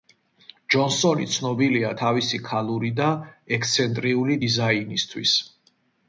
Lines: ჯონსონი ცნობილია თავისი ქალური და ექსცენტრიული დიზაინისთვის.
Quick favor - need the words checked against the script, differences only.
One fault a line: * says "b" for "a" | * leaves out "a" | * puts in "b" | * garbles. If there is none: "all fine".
all fine